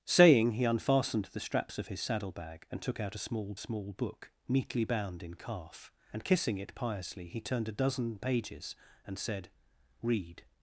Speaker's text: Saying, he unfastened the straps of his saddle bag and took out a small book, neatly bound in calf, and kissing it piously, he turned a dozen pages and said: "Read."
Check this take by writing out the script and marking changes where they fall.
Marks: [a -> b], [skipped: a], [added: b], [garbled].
Saying, he unfastened the straps of his saddle bag and took out a small [added: small] book, neatly bound in calf, and kissing it piously, he turned a dozen pages and said: "Read."